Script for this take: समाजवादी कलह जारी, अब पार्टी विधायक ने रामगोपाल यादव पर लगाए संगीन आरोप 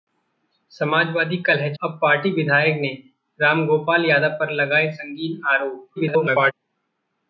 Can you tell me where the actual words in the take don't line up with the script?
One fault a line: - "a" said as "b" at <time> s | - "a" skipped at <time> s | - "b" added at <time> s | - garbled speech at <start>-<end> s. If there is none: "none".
- "जारी" skipped at 1.7 s
- garbled speech at 6.0-6.5 s